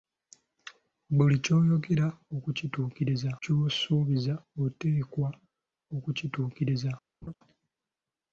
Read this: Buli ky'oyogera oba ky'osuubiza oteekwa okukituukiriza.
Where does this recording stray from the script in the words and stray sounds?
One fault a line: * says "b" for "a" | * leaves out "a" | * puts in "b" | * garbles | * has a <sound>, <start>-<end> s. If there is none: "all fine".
* says "okukituukiriza" for "oba"
* has a laugh, 7.2-7.3 s